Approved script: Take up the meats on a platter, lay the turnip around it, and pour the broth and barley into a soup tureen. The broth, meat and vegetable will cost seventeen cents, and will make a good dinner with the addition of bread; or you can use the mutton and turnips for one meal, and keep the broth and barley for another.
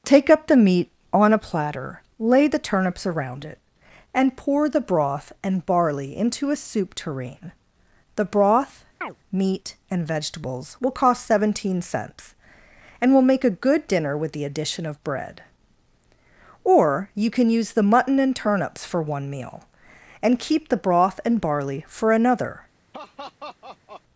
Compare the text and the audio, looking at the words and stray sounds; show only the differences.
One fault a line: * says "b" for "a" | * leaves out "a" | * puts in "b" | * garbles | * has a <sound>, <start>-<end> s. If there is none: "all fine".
* says "meat" for "meats"
* says "turnips" for "turnip"
* has a chirp, 9.0-9.2 s
* says "vegetables" for "vegetable"
* has a laugh, 22.9-24.0 s